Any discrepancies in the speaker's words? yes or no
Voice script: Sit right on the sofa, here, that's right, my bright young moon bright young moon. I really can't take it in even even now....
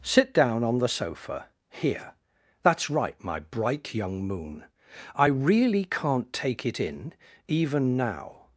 yes